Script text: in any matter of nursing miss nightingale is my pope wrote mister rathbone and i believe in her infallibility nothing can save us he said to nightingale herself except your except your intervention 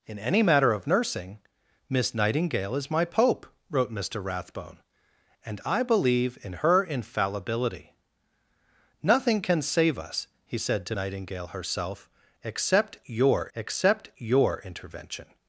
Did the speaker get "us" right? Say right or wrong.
right